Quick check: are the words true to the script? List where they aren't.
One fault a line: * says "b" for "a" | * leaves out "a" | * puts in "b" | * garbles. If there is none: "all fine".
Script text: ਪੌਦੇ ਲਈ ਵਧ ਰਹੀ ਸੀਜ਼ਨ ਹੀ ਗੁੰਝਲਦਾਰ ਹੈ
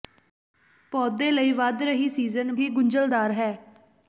all fine